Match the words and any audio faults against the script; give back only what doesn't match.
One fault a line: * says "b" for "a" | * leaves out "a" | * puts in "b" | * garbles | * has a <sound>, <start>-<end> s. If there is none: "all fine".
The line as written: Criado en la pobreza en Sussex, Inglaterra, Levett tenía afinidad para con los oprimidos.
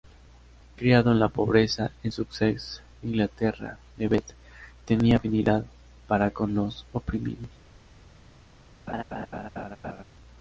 * has a laugh, 8.9-10.0 s